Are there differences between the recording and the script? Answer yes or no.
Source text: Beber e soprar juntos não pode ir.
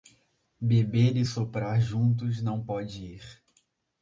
no